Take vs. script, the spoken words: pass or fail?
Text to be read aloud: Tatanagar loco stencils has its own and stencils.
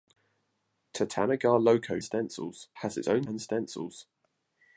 pass